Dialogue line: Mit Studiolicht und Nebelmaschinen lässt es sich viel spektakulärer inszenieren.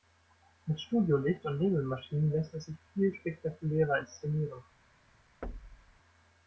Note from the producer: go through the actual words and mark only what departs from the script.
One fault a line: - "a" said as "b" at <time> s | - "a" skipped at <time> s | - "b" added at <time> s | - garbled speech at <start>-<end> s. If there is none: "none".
none